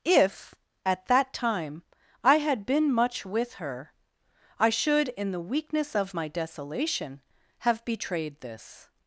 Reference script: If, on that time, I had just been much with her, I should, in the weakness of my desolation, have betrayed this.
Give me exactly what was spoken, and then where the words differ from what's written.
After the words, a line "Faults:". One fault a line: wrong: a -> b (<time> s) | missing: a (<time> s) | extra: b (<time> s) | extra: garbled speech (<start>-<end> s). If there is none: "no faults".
If, at that time, I had been much with her, I should, in the weakness of my desolation, have betrayed this.
Faults:
wrong: on -> at (0.8 s)
missing: just (2.7 s)